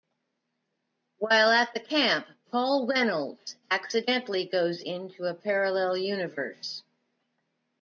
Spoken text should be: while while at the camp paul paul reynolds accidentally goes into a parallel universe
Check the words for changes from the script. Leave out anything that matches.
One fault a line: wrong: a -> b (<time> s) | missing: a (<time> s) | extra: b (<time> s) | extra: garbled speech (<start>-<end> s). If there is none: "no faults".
missing: while (1.5 s)
missing: paul (2.9 s)